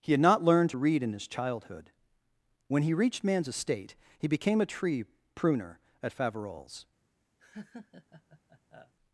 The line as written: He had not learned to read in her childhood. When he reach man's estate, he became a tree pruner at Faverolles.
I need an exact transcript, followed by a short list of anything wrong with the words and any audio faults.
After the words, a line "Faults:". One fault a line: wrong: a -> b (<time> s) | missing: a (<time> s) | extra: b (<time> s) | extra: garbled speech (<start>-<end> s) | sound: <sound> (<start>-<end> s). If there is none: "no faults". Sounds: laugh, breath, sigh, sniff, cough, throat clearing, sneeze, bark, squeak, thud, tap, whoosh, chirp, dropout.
He had not learned to read in his childhood. When he reached man's estate, he became a tree pruner at Faverolles.
Faults:
wrong: her -> his (1.1 s)
wrong: reach -> reached (2.9 s)
sound: laugh (7.4-8.9 s)